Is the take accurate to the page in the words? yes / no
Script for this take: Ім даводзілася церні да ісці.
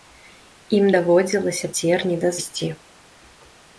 yes